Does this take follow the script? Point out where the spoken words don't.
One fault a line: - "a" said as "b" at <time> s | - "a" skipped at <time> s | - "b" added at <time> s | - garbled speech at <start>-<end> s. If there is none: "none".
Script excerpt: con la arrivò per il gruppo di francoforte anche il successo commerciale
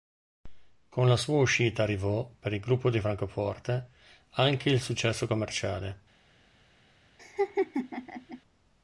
- "sua uscita" added at 1.1 s